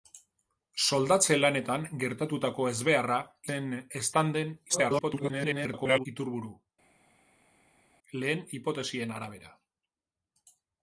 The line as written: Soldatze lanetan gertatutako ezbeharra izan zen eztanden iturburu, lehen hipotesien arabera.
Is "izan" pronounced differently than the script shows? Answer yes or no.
yes